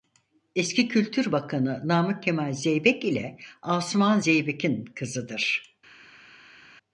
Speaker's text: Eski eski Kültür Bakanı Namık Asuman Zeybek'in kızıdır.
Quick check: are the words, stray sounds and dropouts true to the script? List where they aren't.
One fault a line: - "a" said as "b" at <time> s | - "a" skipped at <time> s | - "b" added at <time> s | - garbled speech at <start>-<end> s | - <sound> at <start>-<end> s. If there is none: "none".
- "eski" skipped at 0.9 s
- "Kemal Zeybek ile" added at 2.2 s